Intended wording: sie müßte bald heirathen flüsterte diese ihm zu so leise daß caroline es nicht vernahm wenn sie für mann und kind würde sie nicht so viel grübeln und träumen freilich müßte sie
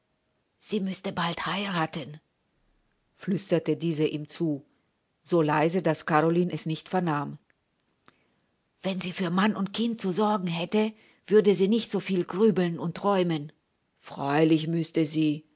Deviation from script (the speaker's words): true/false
true